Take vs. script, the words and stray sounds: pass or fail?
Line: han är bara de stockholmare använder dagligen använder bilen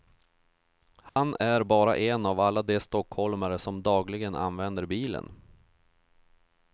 fail